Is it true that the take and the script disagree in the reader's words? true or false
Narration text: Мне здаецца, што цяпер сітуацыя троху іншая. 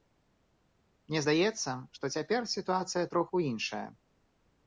false